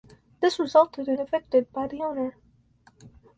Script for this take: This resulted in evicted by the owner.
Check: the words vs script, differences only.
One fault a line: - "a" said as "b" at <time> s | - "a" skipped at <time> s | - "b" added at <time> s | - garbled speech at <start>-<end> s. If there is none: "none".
none